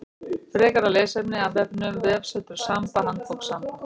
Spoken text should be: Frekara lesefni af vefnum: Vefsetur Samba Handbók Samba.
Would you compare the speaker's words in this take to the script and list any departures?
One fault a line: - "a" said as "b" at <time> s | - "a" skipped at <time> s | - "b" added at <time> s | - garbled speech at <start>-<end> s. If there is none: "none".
none